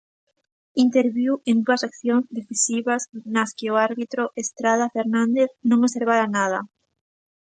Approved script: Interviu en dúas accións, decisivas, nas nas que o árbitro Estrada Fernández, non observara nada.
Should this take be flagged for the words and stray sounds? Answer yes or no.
yes